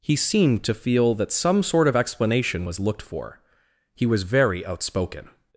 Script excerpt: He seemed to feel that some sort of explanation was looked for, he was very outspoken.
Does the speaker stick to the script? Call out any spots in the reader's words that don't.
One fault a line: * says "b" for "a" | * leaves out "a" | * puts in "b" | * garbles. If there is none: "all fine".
all fine